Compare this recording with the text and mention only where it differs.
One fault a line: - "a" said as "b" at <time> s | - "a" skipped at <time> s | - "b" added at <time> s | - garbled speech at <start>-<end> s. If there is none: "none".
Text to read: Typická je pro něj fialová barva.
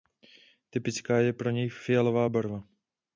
none